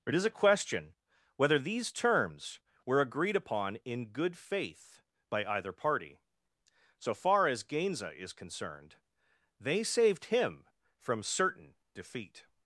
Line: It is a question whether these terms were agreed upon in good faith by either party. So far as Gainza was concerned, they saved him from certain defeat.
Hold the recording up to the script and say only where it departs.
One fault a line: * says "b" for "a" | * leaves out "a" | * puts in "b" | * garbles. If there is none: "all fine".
* says "is" for "was"